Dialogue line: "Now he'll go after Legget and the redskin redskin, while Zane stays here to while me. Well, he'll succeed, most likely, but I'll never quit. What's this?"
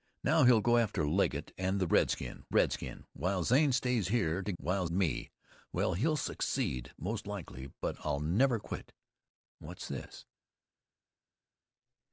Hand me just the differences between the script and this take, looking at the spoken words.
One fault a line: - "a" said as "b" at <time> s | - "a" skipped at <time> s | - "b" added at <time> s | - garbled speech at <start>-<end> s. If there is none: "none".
none